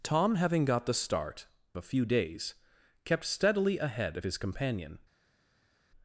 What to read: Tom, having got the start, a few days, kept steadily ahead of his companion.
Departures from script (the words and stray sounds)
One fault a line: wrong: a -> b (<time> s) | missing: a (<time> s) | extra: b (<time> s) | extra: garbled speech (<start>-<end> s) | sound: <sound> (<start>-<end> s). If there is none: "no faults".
no faults